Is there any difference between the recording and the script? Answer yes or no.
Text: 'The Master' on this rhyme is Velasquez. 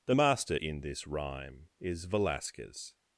yes